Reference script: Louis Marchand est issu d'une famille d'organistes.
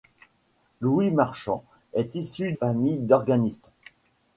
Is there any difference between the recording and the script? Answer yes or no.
yes